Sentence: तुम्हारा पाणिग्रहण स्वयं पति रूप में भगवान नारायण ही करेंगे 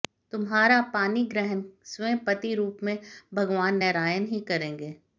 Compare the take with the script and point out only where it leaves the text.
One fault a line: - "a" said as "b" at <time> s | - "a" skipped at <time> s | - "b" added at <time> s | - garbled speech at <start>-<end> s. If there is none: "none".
none